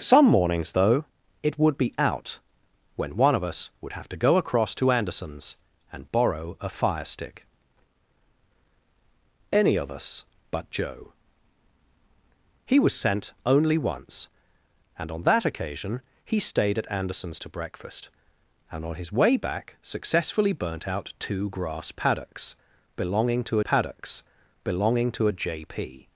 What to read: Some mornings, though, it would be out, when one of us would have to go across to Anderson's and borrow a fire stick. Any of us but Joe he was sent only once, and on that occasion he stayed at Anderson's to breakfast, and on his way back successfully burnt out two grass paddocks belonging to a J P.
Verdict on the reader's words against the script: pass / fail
fail